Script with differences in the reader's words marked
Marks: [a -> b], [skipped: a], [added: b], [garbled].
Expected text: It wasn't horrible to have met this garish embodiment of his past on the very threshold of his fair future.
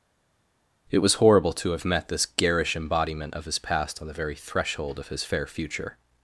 It [wasn't -> was] horrible to have met this garish embodiment of his past on the very threshold of his fair future.